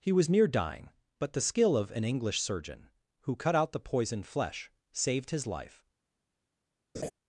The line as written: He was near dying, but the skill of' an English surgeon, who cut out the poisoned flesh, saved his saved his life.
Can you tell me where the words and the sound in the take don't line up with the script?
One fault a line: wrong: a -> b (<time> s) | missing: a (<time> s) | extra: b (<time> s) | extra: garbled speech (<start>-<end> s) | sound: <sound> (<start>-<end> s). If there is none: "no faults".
missing: saved his (5.5 s)
sound: laugh (6.9-7.1 s)